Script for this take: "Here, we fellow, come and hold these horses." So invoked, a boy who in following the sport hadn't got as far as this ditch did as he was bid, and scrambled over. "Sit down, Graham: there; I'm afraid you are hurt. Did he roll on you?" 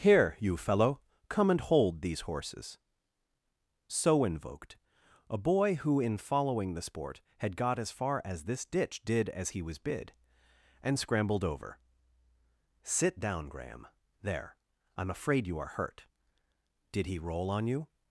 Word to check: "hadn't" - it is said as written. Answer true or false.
false